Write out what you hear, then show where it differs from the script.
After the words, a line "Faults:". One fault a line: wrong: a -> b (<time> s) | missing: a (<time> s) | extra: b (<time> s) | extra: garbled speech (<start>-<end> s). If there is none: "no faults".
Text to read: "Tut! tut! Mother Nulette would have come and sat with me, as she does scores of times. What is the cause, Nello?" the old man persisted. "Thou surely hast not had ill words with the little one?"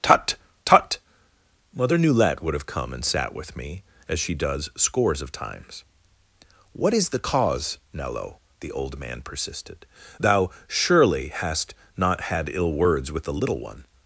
"Tut! tut! Mother Nulette would have come and sat with me, as she does scores of times. What is the cause, Nello?" the old man persisted. "Thou surely hast not had ill words with the little one?"
Faults:
no faults